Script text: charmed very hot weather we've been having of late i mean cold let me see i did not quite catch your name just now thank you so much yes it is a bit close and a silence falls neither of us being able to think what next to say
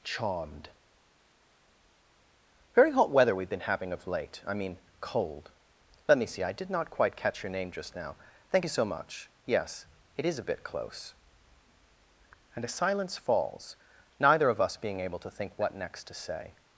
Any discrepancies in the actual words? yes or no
no